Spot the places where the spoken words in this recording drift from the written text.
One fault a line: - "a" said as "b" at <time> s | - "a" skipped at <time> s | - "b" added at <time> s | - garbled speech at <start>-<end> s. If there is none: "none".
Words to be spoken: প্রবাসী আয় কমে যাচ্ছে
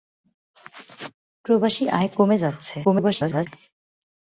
- garbled speech at 2.8-3.5 s